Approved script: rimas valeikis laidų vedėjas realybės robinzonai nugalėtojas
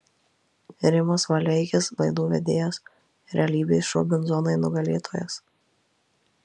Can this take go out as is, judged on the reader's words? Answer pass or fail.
pass